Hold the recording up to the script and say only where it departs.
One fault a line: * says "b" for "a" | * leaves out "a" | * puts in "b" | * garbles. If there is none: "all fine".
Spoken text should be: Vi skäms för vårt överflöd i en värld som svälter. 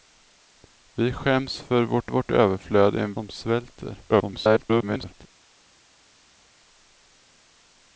* puts in "vårt"
* leaves out "värld"
* garbles